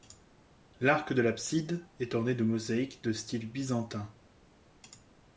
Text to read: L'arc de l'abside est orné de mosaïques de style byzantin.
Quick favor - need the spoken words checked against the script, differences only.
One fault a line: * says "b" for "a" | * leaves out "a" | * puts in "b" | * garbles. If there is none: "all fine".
all fine